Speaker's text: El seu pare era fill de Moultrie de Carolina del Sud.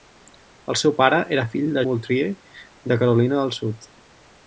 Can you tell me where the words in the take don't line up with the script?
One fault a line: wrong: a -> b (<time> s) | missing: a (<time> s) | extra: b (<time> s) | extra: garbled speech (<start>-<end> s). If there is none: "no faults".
no faults